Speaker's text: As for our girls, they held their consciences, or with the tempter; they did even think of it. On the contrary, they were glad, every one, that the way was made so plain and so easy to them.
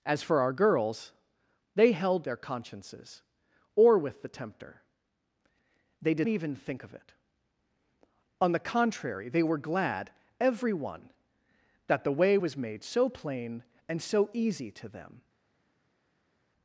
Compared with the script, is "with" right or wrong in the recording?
right